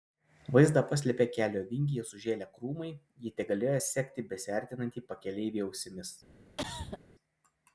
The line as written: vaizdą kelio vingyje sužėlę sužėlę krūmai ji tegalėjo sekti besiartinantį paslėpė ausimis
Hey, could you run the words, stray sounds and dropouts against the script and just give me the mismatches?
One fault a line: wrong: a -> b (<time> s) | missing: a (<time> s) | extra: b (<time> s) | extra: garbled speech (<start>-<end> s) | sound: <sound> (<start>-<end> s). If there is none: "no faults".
extra: paslėpė (0.9 s)
missing: sužėlę (2.5 s)
wrong: paslėpė -> pakeleivį (5.1 s)
sound: cough (6.6-7.0 s)